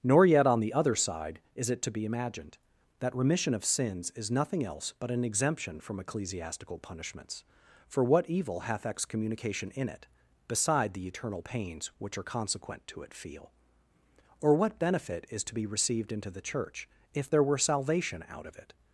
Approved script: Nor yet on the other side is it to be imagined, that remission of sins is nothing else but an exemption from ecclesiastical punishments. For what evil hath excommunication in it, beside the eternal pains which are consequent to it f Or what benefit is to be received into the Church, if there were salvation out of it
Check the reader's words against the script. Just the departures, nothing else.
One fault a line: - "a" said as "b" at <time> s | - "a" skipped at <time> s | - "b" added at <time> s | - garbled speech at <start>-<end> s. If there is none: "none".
- "f" said as "feel" at 13.1 s